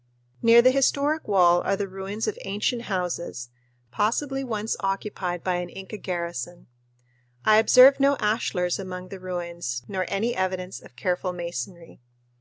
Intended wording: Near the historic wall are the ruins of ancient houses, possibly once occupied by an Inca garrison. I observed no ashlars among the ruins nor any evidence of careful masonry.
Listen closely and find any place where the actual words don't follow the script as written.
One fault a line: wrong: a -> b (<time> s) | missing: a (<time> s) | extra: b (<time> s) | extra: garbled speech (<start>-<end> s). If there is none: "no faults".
no faults